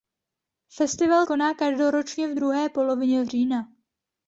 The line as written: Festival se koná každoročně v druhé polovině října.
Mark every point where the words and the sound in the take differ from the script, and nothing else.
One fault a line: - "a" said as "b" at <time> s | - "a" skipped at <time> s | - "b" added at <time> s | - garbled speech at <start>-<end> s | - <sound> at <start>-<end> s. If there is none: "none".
- "se" skipped at 1.3 s